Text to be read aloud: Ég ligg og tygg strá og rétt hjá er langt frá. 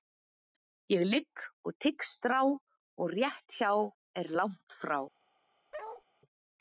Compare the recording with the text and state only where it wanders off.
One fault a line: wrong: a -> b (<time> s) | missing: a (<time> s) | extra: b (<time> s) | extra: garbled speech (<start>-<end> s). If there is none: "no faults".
no faults